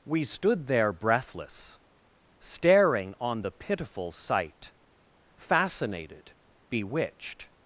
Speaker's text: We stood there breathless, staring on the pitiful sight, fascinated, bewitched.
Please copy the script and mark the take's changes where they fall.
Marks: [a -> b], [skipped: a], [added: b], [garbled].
We stood there breathless, staring on the pitiful sight, fascinated, bewitched.